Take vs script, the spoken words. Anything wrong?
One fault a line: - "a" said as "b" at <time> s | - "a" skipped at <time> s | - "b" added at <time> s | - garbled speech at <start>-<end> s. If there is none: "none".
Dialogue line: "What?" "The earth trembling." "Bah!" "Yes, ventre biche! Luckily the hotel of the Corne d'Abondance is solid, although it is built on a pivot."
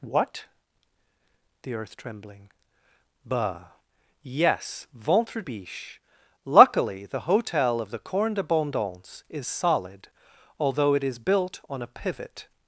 none